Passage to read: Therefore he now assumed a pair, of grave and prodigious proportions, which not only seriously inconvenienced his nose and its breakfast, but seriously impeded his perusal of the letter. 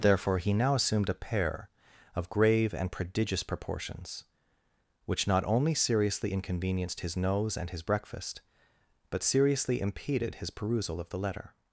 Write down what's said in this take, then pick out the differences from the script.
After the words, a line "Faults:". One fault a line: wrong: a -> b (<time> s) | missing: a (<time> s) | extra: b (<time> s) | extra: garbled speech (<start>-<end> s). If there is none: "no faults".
Therefore he now assumed a pair, of grave and prodigious proportions, which not only seriously inconvenienced his nose and his breakfast, but seriously impeded his perusal of the letter.
Faults:
wrong: its -> his (7.7 s)